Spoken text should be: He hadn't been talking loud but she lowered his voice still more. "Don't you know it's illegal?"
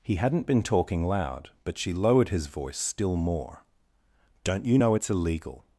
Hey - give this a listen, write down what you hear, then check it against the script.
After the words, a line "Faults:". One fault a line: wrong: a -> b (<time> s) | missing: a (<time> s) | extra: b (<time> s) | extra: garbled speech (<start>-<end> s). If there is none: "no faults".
He hadn't been talking loud but she lowered his voice still more. "Don't you know it's illegal?"
Faults:
no faults